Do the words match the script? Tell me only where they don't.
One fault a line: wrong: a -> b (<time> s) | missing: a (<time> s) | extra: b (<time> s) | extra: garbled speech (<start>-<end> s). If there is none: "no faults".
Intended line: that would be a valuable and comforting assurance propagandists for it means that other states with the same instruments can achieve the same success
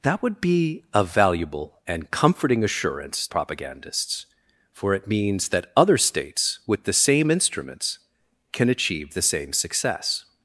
no faults